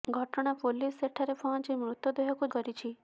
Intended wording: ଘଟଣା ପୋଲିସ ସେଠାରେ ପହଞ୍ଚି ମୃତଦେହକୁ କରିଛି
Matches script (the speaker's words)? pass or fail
pass